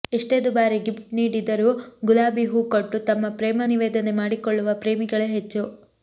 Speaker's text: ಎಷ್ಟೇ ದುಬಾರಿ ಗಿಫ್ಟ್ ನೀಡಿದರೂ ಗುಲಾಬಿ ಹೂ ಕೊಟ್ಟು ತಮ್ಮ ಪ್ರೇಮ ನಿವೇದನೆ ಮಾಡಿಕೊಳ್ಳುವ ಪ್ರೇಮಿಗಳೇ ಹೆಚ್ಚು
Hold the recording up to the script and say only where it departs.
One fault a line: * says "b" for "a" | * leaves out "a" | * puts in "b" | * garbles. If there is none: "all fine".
all fine